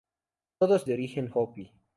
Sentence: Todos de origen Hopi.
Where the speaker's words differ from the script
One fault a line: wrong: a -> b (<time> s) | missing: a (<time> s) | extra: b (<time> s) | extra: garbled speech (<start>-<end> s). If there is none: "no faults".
no faults